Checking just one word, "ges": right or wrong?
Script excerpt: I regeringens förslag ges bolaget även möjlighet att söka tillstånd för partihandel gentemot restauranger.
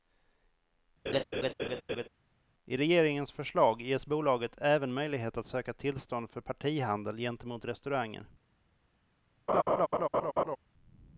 right